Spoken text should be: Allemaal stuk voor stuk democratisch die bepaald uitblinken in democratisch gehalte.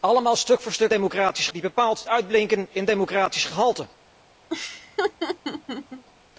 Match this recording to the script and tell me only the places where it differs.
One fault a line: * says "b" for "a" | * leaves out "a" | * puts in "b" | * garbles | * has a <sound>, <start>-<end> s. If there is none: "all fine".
* has a laugh, 4.5-6.0 s